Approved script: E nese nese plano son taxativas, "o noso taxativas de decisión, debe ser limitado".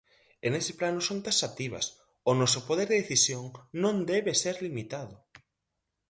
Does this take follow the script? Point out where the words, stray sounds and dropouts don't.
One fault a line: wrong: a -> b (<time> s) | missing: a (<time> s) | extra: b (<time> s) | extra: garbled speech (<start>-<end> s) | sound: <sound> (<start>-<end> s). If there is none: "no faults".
missing: nese (0.7 s)
wrong: taxativas -> poder (2.7 s)
extra: non (3.8 s)